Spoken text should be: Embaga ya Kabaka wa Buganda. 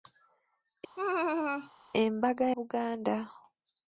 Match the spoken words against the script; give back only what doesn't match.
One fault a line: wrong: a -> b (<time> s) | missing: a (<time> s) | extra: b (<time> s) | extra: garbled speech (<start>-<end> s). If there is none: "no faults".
missing: ya Kabaka wa (2.5 s)